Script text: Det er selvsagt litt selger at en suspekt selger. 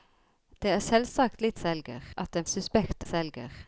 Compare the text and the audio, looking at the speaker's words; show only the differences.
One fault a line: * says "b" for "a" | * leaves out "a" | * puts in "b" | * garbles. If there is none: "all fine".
all fine